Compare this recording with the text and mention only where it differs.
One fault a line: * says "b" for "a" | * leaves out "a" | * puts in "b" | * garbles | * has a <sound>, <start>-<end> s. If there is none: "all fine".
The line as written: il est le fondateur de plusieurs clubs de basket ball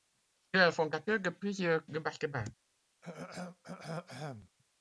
* leaves out "clubs"
* has a throat clearing, 3.0-4.5 s